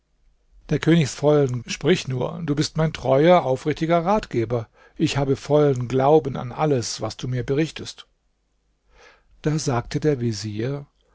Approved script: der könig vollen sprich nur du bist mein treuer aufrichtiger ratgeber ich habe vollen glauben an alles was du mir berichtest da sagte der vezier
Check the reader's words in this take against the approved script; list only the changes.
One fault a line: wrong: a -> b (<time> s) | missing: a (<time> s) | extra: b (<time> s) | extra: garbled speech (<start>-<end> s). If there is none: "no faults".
no faults